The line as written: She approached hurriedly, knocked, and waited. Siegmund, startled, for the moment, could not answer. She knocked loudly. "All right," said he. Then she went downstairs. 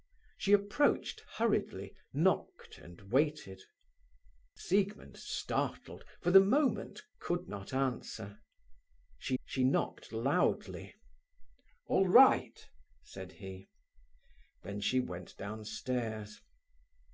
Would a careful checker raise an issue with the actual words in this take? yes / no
yes